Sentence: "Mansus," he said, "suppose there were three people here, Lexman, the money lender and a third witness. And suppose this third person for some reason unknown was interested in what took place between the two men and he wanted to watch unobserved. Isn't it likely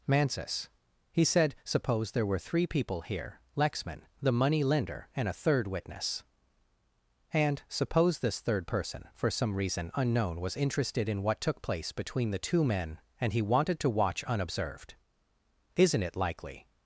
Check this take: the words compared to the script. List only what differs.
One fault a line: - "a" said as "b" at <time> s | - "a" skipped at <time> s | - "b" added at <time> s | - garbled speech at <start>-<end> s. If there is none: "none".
none